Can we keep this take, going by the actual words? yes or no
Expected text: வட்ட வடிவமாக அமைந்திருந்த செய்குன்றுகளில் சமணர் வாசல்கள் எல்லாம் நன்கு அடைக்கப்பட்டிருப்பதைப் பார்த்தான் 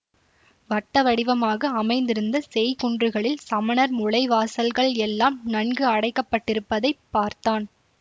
no